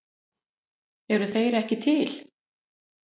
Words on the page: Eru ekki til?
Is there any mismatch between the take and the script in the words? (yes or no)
yes